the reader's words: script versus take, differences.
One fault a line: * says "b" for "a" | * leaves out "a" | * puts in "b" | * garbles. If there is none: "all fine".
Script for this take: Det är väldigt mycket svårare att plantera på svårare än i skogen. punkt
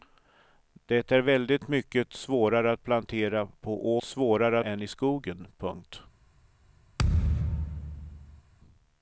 all fine